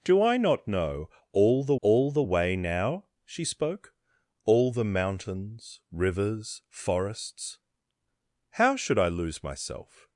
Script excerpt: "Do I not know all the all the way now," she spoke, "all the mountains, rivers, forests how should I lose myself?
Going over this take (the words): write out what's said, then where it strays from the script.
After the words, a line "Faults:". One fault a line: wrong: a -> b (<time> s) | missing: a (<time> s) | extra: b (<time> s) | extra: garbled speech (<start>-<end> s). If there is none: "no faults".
"Do I not know all the all the way now," she spoke, "all the mountains, rivers, forests how should I lose myself?
Faults:
no faults